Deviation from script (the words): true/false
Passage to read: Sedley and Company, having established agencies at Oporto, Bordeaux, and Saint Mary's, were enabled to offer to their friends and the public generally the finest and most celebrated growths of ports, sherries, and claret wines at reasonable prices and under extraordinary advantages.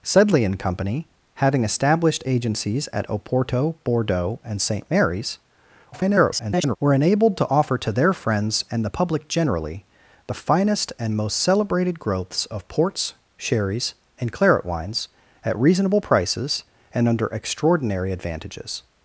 true